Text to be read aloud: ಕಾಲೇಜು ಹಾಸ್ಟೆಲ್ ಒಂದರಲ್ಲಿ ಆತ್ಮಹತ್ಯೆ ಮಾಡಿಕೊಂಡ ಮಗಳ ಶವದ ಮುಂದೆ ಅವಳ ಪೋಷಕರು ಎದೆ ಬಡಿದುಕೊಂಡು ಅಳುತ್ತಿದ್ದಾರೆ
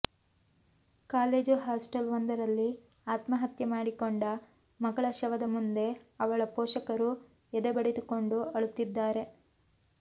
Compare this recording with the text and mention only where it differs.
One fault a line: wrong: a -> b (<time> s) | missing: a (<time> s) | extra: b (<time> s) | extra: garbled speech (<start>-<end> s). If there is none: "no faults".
no faults